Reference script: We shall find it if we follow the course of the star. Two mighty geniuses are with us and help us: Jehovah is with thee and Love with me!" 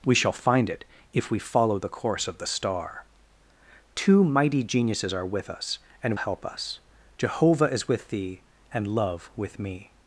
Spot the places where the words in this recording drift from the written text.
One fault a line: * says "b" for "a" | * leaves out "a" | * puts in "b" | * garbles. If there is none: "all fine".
all fine